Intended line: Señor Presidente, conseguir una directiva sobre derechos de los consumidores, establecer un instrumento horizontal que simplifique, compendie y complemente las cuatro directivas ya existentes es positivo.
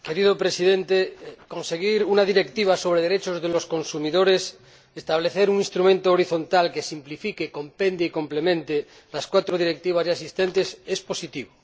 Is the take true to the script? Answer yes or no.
yes